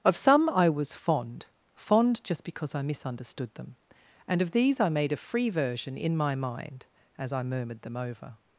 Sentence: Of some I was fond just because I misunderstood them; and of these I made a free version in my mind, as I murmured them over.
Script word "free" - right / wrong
right